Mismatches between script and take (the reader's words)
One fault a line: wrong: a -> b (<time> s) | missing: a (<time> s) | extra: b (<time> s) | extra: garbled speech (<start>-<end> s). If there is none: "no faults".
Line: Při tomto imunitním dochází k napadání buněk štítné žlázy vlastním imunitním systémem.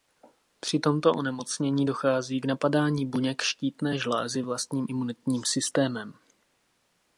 wrong: imunitním -> onemocnění (1.1 s)